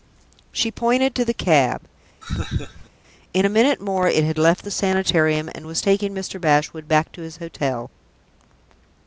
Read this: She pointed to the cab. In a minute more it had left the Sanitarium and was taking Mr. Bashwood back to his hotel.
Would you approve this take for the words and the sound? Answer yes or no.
no